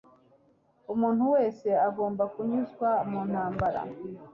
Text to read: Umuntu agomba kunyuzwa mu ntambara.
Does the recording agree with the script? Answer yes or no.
no